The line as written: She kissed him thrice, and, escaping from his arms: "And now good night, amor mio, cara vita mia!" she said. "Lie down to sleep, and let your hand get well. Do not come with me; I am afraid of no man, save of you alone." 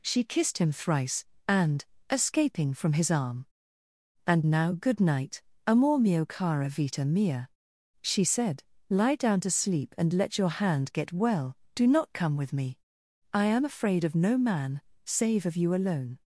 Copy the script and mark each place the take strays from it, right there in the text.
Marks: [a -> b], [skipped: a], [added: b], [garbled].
She kissed him thrice, and, escaping from his [arms: -> arm] "And now good night, amor mio, cara vita mia!" she said. "Lie down to sleep, and let your hand get well. Do not come with me; I am afraid of no man, save of you alone."